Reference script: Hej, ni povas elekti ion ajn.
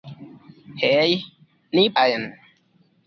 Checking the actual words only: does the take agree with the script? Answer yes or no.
no